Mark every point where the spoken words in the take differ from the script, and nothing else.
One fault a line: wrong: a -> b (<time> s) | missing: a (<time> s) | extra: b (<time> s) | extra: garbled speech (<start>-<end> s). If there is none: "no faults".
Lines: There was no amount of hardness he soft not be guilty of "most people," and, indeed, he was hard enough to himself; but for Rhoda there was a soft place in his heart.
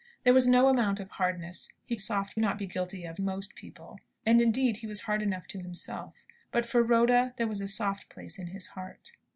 no faults